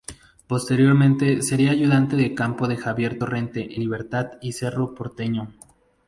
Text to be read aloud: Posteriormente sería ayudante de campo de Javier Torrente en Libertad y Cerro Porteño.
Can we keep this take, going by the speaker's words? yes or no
no